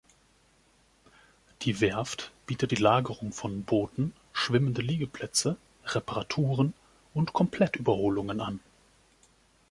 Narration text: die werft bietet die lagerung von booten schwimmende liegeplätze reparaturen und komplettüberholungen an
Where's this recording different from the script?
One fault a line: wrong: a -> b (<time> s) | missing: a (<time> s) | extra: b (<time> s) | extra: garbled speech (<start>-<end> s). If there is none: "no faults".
no faults